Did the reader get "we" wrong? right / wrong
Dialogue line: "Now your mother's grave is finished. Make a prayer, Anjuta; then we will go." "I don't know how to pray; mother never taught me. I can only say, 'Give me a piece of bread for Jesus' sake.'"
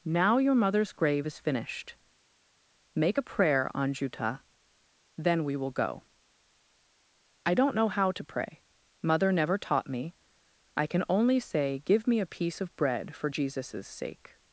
right